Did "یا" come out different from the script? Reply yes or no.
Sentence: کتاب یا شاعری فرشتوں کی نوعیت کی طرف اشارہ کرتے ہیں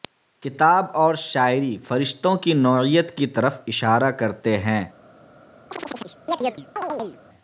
yes